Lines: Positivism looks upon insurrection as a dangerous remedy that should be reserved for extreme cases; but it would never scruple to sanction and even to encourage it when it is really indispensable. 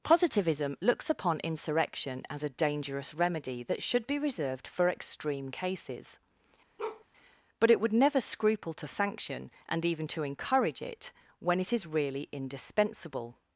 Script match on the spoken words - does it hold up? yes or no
yes